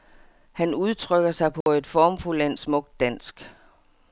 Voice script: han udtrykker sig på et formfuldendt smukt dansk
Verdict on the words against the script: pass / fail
pass